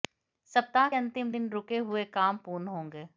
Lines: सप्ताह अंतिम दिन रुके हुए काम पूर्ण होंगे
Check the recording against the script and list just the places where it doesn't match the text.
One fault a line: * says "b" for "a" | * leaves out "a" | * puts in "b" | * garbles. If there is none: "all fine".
all fine